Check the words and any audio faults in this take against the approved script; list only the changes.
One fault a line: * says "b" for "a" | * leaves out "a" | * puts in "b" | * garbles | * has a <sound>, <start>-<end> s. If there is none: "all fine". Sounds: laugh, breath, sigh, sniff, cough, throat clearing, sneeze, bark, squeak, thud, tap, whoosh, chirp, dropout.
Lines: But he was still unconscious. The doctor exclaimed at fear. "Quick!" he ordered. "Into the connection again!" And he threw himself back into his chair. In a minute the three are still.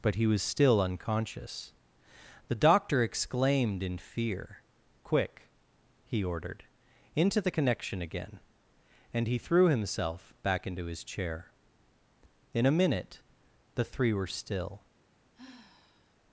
* says "in" for "at"
* says "were" for "are"
* has a sigh, 15.3-16.2 s